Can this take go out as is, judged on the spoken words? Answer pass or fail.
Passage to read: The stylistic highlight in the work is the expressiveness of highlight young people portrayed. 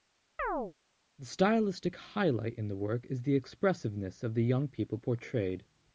fail